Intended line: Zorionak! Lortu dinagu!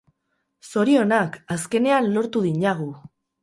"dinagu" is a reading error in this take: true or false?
false